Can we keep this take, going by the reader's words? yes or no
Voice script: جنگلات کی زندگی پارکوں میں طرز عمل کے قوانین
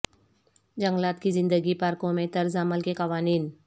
yes